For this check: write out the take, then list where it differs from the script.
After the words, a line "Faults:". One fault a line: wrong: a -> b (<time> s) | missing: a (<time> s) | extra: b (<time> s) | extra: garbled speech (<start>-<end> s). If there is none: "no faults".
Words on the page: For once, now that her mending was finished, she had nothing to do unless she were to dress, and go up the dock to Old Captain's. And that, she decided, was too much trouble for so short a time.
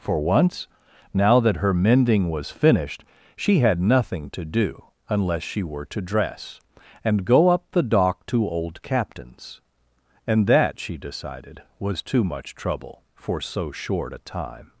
For once, now that her mending was finished, she had nothing to do unless she were to dress, and go up the dock to Old Captain's. And that, she decided, was too much trouble for so short a time.
Faults:
no faults